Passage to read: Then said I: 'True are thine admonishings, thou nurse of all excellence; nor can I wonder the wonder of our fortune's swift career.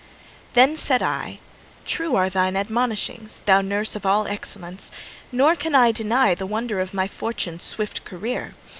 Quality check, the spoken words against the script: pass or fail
fail